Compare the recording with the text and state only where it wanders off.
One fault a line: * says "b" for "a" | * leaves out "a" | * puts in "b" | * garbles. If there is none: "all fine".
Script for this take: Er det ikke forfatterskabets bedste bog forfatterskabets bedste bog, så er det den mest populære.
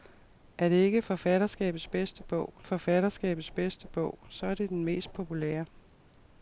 all fine